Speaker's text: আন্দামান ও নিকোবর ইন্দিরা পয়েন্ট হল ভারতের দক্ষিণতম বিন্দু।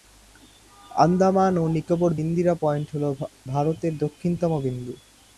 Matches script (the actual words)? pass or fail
pass